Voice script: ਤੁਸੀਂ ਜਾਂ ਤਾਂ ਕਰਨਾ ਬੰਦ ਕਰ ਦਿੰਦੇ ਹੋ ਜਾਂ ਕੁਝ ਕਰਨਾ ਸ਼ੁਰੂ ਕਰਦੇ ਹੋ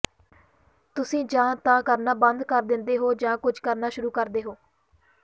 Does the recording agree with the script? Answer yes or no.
yes